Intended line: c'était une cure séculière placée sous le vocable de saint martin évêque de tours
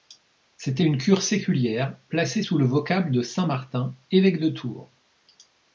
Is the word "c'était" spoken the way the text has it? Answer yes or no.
yes